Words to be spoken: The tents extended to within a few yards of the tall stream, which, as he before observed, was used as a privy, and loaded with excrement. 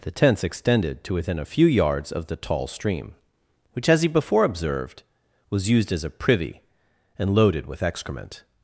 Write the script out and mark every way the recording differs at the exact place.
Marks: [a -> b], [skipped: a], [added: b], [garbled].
The tents extended to within a few yards of the tall stream, which, as he before observed, was used as a privy, and loaded with excrement.